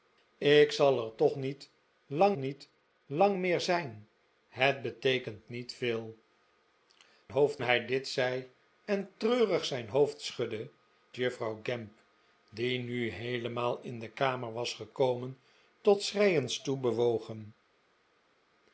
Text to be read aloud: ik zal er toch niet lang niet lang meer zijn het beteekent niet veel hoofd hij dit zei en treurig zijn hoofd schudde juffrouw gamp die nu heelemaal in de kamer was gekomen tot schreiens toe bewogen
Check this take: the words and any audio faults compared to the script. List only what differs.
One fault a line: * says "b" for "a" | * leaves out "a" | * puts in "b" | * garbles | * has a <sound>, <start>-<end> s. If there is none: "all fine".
all fine